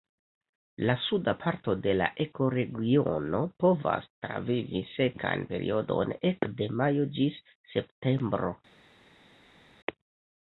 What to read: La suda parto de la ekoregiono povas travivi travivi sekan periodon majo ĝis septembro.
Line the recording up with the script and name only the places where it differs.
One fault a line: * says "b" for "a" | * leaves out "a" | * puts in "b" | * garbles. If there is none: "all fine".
* leaves out "travivi"
* puts in "ekde"